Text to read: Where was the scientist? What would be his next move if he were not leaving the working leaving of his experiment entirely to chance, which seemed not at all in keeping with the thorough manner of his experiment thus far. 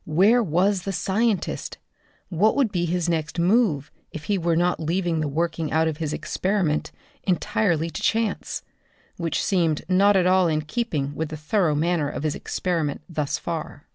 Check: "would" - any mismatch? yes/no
no